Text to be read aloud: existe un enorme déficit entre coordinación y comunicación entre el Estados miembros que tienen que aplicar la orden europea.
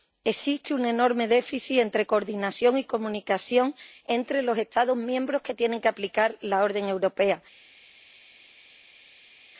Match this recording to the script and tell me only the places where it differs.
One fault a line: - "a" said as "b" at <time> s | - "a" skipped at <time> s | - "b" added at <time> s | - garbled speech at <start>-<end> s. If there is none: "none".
- "el" said as "los" at 4.4 s